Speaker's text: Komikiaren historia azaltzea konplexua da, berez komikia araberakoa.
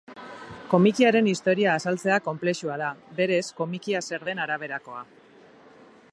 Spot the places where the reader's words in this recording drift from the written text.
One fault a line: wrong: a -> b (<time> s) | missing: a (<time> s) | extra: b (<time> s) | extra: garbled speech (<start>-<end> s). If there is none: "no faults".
extra: zer den (4.1 s)